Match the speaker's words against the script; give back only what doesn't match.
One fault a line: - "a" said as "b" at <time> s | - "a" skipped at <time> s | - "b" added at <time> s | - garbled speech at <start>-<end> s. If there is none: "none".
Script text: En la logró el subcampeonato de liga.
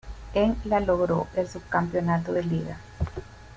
none